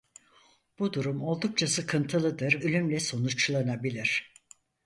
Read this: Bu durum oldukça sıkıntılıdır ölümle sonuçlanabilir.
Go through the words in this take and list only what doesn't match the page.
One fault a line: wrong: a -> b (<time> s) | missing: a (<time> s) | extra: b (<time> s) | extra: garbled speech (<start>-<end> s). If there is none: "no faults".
no faults